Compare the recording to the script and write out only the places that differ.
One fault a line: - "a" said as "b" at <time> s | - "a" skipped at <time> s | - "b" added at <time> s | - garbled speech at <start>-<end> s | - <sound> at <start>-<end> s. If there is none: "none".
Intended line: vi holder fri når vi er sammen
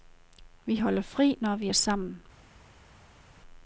none